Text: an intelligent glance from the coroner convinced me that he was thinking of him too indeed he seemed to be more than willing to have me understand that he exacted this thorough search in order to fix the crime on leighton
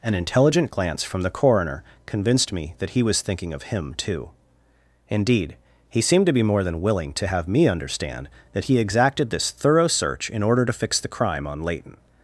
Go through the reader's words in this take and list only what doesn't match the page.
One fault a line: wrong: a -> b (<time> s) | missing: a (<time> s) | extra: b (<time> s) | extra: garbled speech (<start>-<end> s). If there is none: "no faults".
no faults